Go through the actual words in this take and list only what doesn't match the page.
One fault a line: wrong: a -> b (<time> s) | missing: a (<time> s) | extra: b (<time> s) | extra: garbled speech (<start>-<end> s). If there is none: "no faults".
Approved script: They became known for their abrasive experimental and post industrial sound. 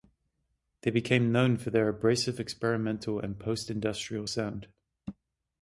no faults